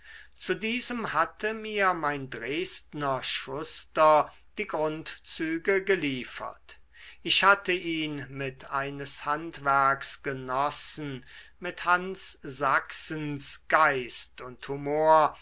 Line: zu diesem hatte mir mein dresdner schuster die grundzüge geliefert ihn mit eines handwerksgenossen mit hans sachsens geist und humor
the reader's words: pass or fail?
fail